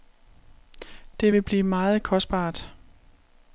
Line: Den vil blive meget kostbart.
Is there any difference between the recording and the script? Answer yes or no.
yes